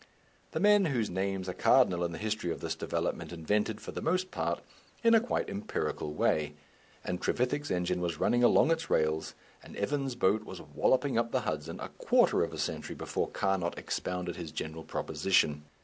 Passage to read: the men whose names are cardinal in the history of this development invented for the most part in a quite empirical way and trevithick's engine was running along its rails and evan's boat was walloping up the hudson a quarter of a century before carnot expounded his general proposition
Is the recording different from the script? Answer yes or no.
no